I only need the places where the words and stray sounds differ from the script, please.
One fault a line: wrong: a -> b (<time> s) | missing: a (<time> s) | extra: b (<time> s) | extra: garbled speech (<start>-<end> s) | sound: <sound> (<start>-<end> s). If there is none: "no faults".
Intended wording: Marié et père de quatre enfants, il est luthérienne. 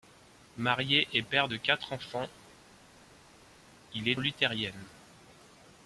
no faults